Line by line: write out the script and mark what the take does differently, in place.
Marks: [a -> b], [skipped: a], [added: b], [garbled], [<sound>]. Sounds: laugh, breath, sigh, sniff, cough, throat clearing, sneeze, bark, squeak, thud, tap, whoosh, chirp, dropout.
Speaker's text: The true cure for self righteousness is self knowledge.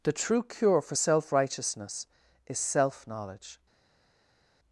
The true cure for self righteousness is self knowledge.